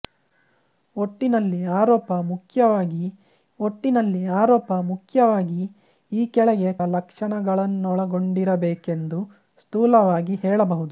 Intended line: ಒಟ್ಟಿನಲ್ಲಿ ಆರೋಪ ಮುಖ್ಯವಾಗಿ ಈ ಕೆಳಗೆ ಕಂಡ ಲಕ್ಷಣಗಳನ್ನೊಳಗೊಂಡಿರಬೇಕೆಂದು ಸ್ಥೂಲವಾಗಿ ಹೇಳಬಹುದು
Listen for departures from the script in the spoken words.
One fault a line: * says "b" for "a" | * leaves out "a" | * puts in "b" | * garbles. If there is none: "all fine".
* puts in "ಒಟ್ಟಿನಲ್ಲಿ ಆರೋಪ ಮುಖ್ಯವಾಗಿ"
* leaves out "ಕಂಡ"